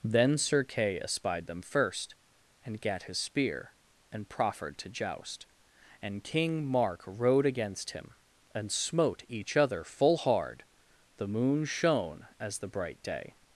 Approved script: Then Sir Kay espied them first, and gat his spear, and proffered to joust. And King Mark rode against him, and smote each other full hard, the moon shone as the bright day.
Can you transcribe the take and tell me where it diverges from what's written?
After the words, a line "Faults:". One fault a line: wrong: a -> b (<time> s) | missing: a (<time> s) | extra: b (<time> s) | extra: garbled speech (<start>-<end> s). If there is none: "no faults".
Then Sir Kay espied them first, and gat his spear, and proffered to joust. And King Mark rode against him, and smote each other full hard, the moon shone as the bright day.
Faults:
no faults